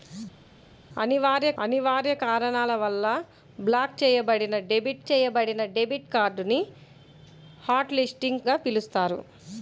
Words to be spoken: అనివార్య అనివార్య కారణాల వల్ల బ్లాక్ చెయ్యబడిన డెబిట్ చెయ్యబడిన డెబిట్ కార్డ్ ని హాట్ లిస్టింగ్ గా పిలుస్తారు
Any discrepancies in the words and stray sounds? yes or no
no